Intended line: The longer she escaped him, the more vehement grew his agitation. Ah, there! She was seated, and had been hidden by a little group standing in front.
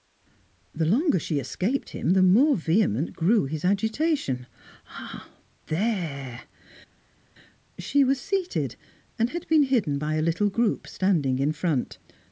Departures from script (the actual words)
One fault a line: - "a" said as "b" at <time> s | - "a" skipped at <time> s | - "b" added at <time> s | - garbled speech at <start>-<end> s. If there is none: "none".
none